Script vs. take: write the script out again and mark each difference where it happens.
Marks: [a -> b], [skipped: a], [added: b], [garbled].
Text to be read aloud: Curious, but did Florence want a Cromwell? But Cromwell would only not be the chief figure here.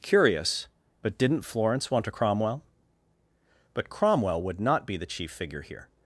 Curious, but [did -> didn't] Florence want a Cromwell? But Cromwell would [skipped: only] not be the chief figure here.